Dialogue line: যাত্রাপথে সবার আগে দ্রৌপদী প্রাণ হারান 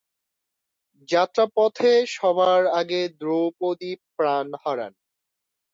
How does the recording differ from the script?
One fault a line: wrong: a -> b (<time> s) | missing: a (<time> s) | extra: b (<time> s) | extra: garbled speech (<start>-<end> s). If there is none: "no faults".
no faults